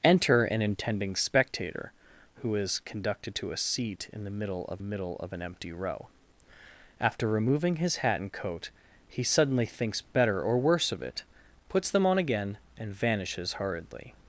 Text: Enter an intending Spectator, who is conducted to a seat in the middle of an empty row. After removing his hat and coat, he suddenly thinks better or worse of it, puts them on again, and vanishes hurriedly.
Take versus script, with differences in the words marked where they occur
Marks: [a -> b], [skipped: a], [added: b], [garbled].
Enter an intending Spectator, who is conducted to a seat in the middle of [added: middle of] an empty row. After removing his hat and coat, he suddenly thinks better or worse of it, puts them on again, and vanishes hurriedly.